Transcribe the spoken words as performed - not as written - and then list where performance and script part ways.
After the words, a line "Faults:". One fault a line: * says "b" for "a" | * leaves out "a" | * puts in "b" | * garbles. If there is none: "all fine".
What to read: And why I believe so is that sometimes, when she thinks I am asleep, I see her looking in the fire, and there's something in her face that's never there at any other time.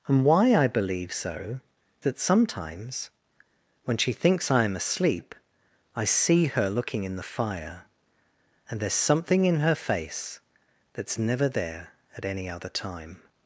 And why I believe so that sometimes, when she thinks I am asleep, I see her looking in the fire, and there's something in her face that's never there at any other time.
Faults:
* leaves out "is"